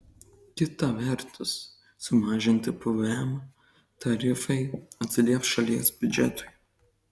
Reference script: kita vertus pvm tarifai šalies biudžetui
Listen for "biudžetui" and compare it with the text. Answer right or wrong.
right